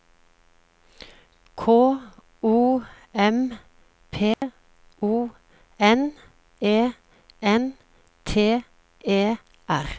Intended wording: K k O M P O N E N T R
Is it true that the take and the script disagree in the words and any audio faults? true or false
true